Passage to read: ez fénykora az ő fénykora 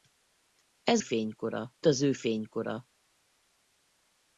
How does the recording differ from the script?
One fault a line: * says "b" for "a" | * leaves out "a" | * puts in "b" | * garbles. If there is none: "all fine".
all fine